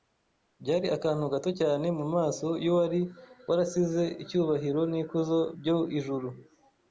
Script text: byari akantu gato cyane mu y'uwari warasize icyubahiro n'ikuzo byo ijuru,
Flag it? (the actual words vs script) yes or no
yes